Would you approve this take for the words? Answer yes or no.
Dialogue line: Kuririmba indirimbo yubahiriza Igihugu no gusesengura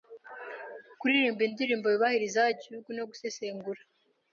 yes